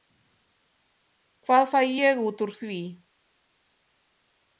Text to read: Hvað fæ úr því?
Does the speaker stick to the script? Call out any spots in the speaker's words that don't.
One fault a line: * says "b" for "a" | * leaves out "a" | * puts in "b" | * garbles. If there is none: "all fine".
* puts in "ég út"